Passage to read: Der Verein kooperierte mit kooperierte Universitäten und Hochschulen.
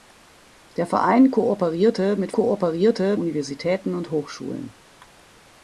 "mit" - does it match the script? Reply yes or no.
yes